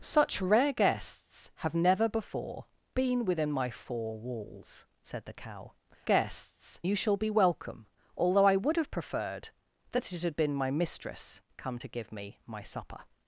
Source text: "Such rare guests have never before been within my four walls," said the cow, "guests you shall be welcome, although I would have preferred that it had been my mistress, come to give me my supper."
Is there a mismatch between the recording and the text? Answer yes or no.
no